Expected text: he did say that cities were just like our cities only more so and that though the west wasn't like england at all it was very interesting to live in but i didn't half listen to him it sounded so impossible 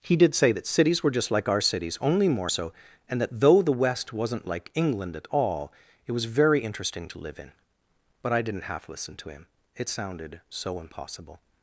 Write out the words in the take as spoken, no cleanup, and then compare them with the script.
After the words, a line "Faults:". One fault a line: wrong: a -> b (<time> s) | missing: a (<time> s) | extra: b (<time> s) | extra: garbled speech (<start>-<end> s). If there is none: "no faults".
he did say that cities were just like our cities only more so and that though the west wasn't like england at all it was very interesting to live in but i didn't half listen to him it sounded so impossible
Faults:
no faults